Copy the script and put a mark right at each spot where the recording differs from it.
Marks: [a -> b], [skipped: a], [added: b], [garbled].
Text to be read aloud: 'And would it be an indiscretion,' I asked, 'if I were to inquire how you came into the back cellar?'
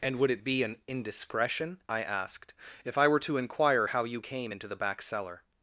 'And would it be an indiscretion,' I asked, 'if I were to inquire how you came into the back cellar?'